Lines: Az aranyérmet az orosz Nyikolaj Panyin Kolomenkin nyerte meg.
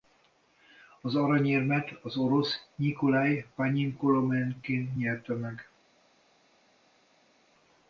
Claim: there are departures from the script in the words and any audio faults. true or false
false